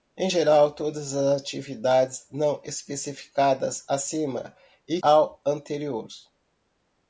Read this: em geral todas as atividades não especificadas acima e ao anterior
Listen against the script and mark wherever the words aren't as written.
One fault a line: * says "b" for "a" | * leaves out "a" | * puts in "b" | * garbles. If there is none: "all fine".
all fine